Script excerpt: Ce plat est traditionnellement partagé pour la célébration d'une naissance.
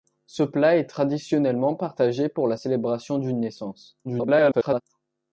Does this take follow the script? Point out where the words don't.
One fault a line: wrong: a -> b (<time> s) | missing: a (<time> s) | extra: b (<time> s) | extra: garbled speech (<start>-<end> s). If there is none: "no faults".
extra: garbled speech (4.0-4.8 s)